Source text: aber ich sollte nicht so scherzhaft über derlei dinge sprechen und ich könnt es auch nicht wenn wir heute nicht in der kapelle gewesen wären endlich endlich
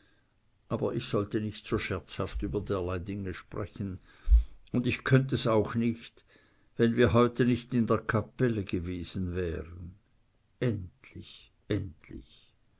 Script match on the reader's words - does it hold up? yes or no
yes